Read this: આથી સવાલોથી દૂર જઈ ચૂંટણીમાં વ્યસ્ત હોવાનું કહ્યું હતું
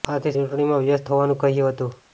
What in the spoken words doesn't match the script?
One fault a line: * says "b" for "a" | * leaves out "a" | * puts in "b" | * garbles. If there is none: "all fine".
* leaves out "સવાલોથી દૂર જઈ"